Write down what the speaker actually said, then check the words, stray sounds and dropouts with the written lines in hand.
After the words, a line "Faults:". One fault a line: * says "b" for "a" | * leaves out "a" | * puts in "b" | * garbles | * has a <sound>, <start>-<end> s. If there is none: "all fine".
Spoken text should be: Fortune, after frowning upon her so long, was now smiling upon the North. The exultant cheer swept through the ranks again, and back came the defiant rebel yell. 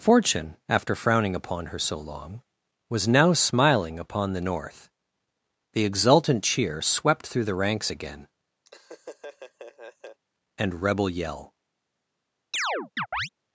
Fortune, after frowning upon her so long, was now smiling upon the North. The exultant cheer swept through the ranks again, and rebel yell.
Faults:
* has a laugh, 8.7-10.2 s
* leaves out "back came the defiant"
* has a chirp, 12.5-13.3 s